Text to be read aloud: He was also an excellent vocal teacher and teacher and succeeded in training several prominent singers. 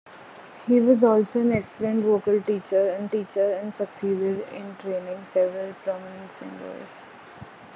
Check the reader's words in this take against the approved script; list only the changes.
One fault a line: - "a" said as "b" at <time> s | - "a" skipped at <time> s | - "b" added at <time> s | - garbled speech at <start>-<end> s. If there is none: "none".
none